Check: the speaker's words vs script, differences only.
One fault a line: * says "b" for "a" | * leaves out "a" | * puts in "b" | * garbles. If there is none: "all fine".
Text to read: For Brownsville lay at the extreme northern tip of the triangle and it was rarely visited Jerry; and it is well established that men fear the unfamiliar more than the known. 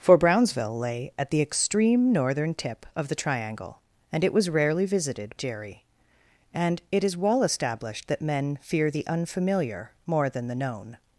all fine